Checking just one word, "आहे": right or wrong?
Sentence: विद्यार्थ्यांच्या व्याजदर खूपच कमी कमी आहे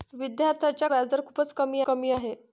right